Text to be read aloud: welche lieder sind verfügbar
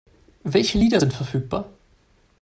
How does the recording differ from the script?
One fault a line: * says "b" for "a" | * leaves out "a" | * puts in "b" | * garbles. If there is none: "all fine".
all fine